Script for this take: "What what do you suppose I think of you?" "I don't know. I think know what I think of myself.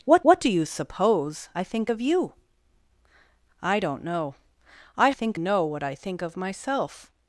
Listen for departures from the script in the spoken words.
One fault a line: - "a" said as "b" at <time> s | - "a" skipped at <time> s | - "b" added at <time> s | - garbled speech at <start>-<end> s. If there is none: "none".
none